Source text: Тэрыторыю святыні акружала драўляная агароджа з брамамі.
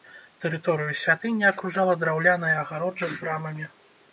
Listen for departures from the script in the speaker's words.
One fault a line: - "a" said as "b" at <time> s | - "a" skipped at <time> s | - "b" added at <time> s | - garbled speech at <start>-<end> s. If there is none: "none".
none